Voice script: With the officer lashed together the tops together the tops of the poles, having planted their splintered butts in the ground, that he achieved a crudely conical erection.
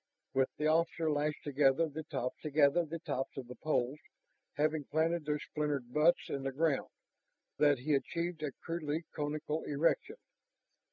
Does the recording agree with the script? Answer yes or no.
yes